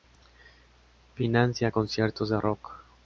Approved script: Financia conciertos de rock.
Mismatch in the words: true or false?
false